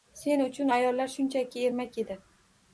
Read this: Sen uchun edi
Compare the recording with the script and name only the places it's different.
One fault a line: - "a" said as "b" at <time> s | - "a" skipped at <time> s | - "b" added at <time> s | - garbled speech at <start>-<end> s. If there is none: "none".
- "ayollar shunchaki ermak" added at 0.7 s